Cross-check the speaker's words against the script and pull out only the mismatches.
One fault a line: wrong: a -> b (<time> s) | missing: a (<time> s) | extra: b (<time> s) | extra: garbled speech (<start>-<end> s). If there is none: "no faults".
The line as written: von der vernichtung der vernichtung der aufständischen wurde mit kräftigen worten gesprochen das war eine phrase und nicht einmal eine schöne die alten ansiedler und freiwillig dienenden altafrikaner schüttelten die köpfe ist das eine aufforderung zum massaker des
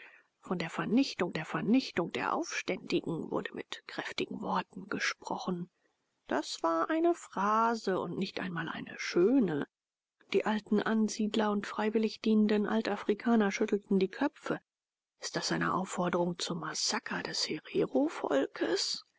no faults